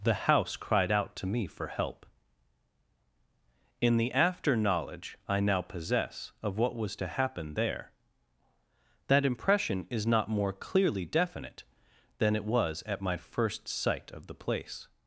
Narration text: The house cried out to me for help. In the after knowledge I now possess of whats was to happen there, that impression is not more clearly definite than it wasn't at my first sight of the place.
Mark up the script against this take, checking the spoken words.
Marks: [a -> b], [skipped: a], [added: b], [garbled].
The house cried out to me for help. In the after knowledge I now possess of [whats -> what] was to happen there, that impression is not more clearly definite than it [wasn't -> was] at my first sight of the place.